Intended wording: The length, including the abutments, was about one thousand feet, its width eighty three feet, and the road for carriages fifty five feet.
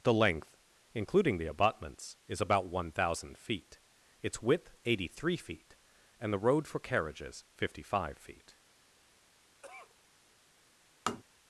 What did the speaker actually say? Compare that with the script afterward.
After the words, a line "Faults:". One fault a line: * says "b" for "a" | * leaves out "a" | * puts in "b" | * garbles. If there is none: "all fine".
The length, including the abutments, is about one thousand feet, its width eighty three feet, and the road for carriages fifty five feet.
Faults:
* says "is" for "was"